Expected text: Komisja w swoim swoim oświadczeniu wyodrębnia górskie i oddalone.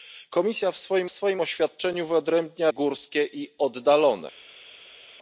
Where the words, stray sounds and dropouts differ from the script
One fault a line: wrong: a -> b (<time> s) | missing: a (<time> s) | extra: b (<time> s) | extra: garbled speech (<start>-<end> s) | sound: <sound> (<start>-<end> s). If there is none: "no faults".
no faults